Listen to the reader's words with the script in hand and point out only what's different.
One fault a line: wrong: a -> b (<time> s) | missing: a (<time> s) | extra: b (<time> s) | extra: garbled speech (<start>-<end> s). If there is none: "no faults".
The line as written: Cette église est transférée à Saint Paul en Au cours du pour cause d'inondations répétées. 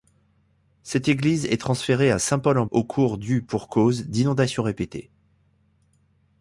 no faults